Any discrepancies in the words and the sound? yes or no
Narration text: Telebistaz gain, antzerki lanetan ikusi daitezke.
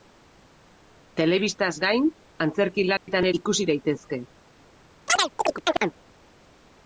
yes